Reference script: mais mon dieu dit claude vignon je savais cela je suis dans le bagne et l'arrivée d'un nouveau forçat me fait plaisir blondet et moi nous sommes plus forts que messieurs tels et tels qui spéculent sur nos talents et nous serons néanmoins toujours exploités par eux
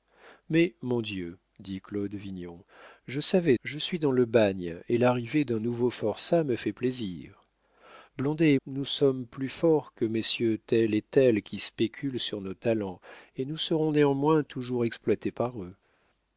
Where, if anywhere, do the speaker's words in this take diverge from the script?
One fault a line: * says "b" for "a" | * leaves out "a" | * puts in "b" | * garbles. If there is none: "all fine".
* leaves out "cela"
* leaves out "moi"